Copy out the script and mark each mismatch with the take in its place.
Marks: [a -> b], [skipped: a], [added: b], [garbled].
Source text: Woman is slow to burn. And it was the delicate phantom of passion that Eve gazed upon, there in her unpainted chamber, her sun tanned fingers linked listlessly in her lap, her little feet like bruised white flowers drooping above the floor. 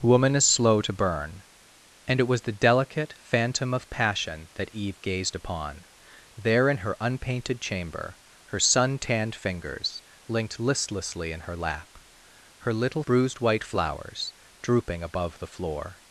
Woman is slow to burn. And it was the delicate phantom of passion that Eve gazed upon, there in her unpainted chamber, her sun tanned fingers linked listlessly in her lap, her little [skipped: feet like] bruised white flowers drooping above the floor.